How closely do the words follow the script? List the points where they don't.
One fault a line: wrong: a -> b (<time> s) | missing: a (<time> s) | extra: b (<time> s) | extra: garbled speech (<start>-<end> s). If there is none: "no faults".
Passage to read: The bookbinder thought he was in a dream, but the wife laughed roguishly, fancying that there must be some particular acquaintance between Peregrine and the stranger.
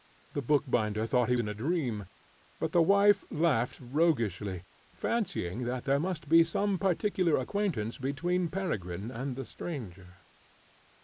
missing: was (1.3 s)